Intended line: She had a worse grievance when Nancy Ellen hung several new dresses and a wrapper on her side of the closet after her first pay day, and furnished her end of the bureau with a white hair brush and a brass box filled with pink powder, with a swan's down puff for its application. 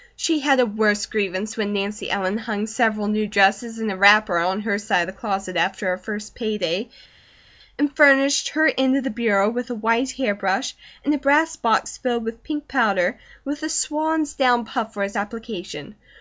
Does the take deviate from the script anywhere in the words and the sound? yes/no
no